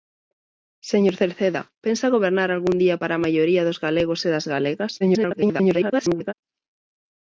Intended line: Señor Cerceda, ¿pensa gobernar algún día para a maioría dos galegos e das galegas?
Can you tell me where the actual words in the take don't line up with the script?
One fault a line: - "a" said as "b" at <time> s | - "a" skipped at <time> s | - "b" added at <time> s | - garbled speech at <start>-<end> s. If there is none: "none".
- garbled speech at 5.0-6.3 s